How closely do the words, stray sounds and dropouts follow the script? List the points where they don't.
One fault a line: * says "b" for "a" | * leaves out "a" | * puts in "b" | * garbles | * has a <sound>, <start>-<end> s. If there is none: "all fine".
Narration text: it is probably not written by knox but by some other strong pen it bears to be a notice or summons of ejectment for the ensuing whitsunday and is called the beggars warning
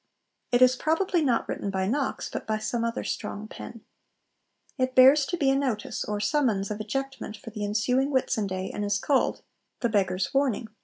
all fine